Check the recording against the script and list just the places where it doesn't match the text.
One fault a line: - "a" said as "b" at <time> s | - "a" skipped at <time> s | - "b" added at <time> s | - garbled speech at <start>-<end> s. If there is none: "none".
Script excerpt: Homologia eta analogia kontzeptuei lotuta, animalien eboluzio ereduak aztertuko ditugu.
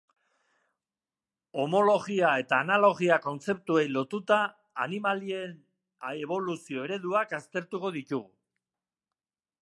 none